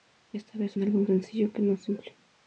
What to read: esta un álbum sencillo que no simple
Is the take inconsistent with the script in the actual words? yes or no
yes